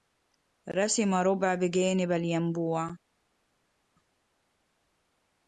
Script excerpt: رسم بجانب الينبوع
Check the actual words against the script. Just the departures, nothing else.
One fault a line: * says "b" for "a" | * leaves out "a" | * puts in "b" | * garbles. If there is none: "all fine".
* puts in "ربع"